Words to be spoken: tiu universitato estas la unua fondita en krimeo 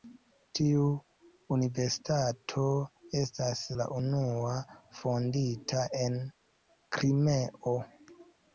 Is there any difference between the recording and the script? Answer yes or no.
no